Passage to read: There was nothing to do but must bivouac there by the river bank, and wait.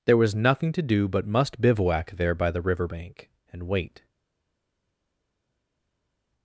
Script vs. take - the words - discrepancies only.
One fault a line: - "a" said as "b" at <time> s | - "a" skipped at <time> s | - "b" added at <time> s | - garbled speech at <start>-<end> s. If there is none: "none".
none